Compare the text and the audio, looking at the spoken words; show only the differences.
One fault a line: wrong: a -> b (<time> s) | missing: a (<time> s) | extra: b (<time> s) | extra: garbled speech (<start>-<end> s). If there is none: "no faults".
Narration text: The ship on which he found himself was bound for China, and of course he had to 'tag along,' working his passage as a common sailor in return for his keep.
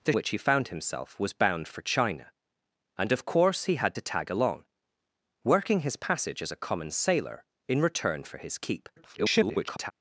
missing: ship on (0.1 s)
extra: garbled speech (9.0-9.9 s)